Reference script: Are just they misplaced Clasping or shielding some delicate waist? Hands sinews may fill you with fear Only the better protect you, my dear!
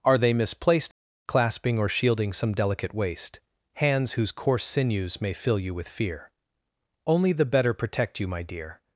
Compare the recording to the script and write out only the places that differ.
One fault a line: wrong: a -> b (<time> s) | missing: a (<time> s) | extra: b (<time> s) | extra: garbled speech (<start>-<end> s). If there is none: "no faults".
missing: just (0.2 s)
extra: whose coarse (4.1 s)